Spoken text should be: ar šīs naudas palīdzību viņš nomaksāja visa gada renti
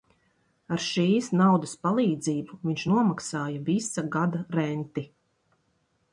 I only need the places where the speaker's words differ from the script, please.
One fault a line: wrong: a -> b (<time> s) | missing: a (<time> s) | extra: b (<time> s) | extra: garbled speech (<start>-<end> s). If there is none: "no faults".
no faults